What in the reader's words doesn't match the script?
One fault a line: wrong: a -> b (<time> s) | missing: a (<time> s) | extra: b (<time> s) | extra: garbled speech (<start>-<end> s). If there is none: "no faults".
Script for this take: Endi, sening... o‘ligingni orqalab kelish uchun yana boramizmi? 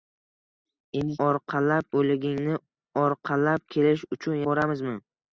wrong: sening -> orqalab (1.3 s)
missing: yana (4.4 s)